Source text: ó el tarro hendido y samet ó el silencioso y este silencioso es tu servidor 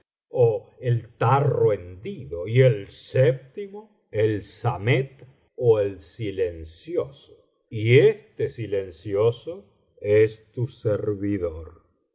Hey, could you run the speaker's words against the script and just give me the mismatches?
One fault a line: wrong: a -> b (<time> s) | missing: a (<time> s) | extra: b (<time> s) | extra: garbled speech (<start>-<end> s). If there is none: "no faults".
extra: el séptimo el (2.6 s)